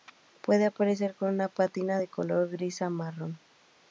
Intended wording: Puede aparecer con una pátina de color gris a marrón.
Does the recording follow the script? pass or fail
pass